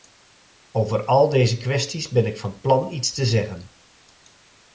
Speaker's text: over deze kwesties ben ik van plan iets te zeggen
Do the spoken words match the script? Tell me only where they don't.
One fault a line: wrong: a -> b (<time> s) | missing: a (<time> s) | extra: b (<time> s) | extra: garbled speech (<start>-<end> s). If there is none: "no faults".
extra: al (1.1 s)